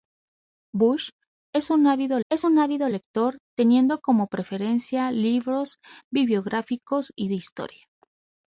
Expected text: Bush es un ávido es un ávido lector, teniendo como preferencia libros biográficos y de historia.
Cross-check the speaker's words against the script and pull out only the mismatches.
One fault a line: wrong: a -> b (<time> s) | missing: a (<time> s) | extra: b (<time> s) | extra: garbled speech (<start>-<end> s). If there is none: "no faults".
no faults